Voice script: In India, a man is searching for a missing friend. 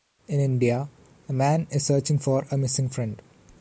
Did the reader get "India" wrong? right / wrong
right